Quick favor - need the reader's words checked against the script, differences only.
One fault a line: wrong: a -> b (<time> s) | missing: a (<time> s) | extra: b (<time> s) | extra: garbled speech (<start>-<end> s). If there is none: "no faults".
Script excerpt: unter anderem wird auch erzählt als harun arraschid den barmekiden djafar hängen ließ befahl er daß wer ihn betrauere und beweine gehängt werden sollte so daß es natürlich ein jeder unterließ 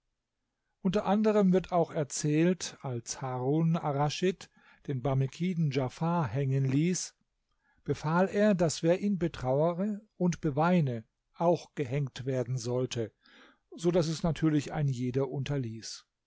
extra: auch (11.4 s)